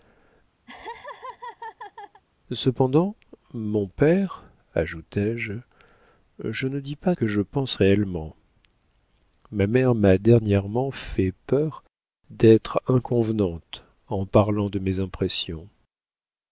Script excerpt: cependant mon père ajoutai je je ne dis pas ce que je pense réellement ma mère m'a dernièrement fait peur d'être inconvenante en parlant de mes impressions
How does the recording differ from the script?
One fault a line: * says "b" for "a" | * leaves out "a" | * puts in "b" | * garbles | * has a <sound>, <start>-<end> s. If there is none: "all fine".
* has a laugh, 0.7-2.2 s
* leaves out "ce"